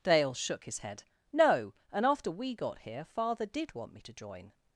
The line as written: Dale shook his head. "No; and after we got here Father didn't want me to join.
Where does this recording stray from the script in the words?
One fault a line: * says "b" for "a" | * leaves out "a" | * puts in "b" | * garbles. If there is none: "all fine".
* says "did" for "didn't"